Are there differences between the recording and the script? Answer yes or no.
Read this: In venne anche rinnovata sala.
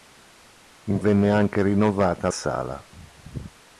no